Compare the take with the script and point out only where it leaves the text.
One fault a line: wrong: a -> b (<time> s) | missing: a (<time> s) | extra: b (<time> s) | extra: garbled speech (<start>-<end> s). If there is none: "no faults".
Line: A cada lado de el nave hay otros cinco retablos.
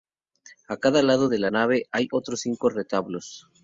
wrong: el -> la (1.4 s)